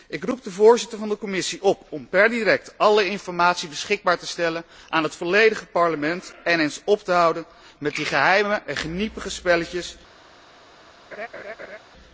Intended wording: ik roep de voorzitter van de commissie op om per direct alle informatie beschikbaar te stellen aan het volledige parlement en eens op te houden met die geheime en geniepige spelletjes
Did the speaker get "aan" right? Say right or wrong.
right